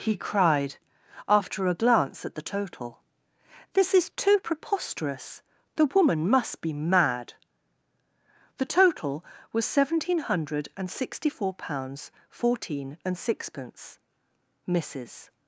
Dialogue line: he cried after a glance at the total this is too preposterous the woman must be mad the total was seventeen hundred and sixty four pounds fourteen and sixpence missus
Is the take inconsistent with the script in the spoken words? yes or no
no